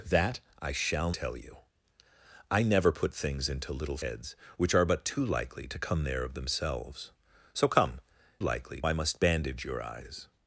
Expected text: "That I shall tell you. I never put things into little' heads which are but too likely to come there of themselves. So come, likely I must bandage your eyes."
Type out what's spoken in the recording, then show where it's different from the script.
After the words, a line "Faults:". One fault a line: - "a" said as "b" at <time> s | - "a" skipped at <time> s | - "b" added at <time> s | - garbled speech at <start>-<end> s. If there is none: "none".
"That I shall tell you. I never put things into little' heads which are but too likely to come there of themselves. So come, likely I must bandage your eyes."
Faults:
none